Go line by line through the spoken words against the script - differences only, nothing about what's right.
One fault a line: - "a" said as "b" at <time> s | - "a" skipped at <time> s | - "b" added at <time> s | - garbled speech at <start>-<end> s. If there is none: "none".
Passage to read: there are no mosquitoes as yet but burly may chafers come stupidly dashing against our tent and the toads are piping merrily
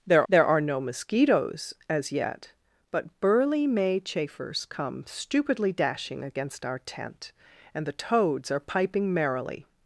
- "there" added at 0.3 s